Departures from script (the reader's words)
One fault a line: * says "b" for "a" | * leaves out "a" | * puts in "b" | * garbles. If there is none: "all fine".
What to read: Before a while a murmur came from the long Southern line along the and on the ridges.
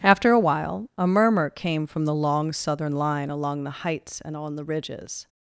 * says "After" for "Before"
* puts in "heights"